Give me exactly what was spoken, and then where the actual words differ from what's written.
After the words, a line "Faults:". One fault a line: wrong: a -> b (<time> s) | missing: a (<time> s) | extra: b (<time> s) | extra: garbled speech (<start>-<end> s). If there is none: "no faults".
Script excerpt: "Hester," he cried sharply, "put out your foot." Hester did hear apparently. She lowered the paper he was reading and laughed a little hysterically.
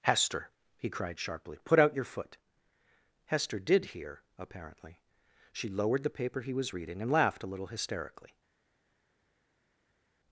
"Hester," he cried sharply, "put out your foot." Hester did hear apparently. She lowered the paper he was reading and laughed a little hysterically.
Faults:
no faults